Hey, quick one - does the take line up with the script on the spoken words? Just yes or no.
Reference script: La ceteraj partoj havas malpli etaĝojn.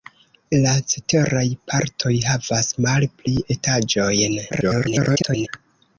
no